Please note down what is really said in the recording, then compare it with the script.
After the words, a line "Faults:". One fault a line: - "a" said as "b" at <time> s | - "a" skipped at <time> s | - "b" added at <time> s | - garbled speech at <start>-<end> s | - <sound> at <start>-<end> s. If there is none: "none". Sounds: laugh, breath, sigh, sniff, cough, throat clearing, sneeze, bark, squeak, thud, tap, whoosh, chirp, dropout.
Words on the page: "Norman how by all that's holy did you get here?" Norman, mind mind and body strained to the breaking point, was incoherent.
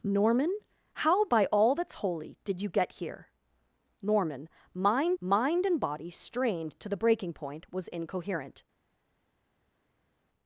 "Norman how by all that's holy did you get here?" Norman, mind mind and body strained to the breaking point, was incoherent.
Faults:
none